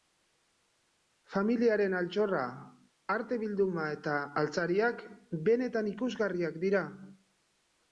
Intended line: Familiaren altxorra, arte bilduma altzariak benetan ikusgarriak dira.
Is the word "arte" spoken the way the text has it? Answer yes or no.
yes